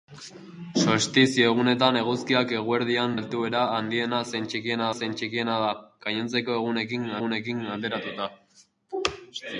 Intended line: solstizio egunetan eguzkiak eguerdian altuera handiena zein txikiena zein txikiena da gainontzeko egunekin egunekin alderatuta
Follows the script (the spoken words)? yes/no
yes